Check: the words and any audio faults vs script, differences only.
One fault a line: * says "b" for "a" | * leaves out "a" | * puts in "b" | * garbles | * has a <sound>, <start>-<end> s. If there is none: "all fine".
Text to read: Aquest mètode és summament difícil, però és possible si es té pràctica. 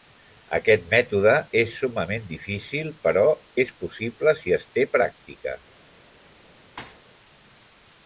* has a thud, 6.8-7.0 s